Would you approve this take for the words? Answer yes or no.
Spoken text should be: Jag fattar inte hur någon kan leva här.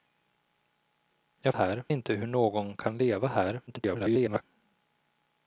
no